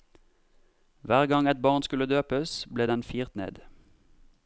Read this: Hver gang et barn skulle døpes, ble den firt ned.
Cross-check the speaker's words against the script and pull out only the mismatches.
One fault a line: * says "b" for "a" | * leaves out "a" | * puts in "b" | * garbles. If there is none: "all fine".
all fine